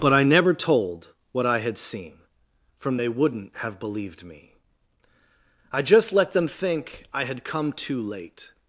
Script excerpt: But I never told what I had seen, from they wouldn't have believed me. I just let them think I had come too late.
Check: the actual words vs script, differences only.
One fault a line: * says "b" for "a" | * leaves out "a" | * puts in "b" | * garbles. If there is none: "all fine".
all fine